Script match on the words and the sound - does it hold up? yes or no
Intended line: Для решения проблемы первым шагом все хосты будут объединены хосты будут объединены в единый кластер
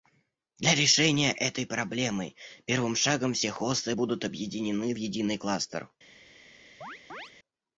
no